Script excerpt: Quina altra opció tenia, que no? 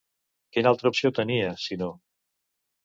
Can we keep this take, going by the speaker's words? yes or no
no